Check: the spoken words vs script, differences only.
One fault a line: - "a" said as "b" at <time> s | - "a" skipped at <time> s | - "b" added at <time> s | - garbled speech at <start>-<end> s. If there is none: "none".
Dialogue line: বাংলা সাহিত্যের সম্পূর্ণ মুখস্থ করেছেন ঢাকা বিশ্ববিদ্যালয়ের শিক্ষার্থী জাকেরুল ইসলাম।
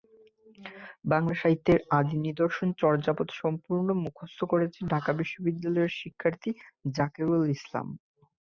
- "আদি নিদর্শন চর্যাপদ" added at 2.0 s